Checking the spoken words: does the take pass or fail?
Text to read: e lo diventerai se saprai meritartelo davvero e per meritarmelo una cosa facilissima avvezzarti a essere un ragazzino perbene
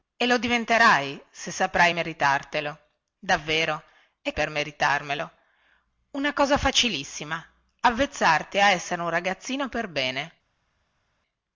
pass